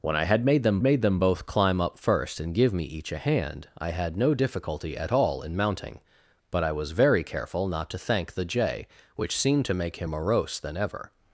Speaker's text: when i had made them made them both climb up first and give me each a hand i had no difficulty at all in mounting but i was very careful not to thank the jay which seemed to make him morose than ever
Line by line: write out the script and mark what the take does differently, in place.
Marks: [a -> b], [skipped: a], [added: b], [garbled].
when i had made them made them both climb up first and give me each a hand i had no difficulty at all in mounting but i was very careful not to thank the jay which seemed to make him morose than ever